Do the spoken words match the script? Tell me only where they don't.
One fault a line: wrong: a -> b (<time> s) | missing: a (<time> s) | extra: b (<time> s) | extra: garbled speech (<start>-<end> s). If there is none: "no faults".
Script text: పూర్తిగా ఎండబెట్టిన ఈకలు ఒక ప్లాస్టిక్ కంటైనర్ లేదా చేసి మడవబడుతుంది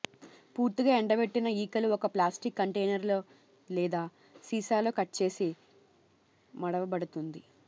extra: సీసాలో కట్ (4.4 s)